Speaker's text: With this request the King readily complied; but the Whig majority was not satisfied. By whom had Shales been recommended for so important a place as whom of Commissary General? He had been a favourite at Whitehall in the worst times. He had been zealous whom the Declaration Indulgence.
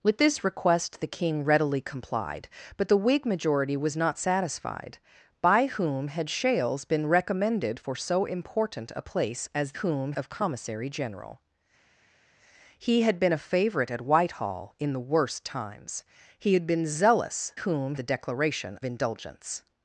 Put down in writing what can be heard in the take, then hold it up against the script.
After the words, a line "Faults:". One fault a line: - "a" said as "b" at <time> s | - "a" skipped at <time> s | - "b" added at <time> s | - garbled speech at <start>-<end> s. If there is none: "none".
With this request the King readily complied; but the Whig majority was not satisfied. By whom had Shales been recommended for so important a place as whom of Commissary General? He had been a favourite at Whitehall in the worst times. He had been zealous whom the Declaration Indulgence.
Faults:
none